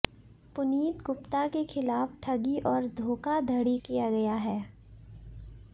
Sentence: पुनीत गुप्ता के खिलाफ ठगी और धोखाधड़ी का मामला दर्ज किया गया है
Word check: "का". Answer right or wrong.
wrong